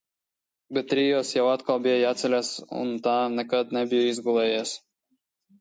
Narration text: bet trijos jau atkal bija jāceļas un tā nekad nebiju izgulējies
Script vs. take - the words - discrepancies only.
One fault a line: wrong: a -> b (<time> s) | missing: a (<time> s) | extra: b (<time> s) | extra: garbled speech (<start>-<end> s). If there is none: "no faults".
no faults